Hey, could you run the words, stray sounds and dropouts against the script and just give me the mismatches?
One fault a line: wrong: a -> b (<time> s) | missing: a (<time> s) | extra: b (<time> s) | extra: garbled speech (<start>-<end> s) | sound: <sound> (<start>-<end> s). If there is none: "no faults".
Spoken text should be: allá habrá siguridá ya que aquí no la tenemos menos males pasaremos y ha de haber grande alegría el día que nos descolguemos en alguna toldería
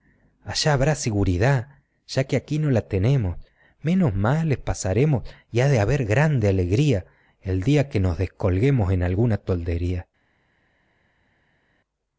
no faults